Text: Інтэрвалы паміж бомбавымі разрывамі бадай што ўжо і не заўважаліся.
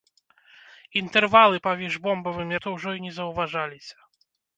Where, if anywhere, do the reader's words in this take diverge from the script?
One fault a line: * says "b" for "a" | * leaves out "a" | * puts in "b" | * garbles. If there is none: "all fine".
* leaves out "разрывамі бадай"